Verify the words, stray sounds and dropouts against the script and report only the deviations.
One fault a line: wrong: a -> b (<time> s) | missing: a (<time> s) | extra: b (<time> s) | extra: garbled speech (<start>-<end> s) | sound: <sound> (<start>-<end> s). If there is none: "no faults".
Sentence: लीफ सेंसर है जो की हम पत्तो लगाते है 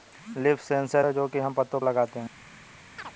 sound: chirp (3.0-3.1 s)